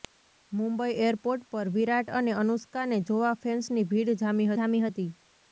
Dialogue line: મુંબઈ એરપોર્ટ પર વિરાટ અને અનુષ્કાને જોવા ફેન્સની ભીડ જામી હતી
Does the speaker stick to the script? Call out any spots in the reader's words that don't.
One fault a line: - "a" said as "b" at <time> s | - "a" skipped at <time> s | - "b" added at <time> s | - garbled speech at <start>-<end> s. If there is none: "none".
- "જામી" added at 4.5 s